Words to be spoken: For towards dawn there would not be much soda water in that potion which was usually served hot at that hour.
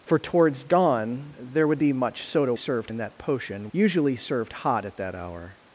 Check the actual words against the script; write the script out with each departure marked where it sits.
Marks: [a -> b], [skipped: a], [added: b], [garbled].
For towards dawn there would [skipped: not] be much soda [water -> served] in that potion [skipped: which was] usually served hot at that hour.